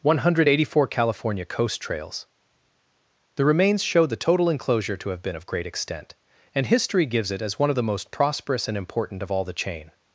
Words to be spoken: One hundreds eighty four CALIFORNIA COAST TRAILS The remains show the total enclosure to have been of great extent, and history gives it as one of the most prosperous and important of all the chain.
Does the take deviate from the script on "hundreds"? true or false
true